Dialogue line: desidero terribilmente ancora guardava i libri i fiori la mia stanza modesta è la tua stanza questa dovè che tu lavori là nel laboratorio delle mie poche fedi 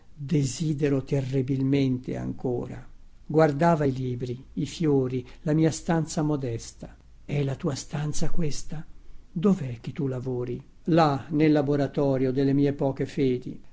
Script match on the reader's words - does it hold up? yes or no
yes